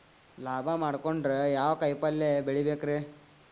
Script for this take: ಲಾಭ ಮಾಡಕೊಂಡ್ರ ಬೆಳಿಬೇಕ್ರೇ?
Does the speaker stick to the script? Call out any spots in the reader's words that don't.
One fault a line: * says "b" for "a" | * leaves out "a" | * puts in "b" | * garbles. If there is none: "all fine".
* puts in "ಯಾವ ಕಾಯಿಪಲ್ಯ"